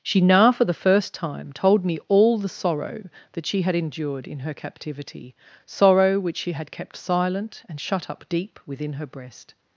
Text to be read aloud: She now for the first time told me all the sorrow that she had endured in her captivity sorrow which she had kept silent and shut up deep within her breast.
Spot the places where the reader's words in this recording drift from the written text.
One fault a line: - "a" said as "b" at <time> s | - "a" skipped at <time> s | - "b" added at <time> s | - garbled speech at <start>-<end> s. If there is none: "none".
none